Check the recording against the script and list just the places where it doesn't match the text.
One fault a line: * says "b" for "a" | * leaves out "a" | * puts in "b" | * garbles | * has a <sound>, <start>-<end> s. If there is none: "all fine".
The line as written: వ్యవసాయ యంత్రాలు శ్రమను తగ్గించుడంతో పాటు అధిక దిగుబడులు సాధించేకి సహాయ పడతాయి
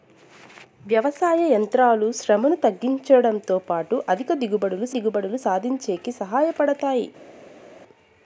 * puts in "దిగుబడులు"